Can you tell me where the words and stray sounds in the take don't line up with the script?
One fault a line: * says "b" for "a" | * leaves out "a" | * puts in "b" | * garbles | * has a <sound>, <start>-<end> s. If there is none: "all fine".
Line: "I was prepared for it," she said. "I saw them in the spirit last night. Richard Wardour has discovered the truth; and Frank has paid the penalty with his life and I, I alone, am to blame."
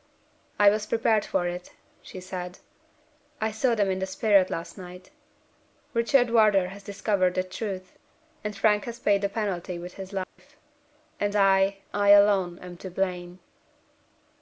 * has a dropout, 10.2-10.4 s